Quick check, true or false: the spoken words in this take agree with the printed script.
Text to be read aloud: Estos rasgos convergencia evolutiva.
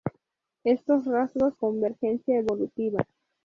true